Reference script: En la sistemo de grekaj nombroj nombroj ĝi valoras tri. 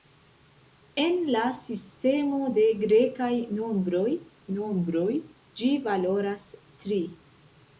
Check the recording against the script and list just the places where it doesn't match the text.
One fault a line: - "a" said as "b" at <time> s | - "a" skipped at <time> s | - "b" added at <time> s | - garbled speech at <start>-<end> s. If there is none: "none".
none